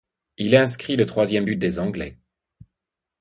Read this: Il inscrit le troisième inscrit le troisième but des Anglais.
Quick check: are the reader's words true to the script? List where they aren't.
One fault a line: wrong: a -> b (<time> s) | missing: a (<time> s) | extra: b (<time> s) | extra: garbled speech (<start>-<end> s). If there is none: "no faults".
missing: inscrit le troisième (1.4 s)